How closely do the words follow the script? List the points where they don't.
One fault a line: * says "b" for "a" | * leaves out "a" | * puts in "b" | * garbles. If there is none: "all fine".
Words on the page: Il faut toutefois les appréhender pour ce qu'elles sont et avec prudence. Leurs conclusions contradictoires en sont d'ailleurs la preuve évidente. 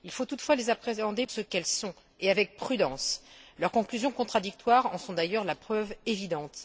* leaves out "pour"